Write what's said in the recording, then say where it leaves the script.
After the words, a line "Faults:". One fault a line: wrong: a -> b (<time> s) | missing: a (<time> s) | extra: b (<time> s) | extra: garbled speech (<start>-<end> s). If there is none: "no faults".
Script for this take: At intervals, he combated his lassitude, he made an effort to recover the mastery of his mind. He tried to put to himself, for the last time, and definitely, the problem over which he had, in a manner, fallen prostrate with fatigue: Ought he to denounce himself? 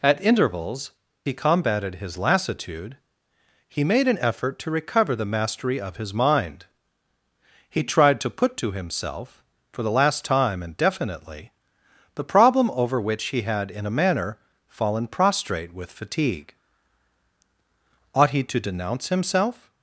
At intervals, he combated his lassitude, he made an effort to recover the mastery of his mind. He tried to put to himself, for the last time, and definitely, the problem over which he had, in a manner, fallen prostrate with fatigue: Ought he to denounce himself?
Faults:
no faults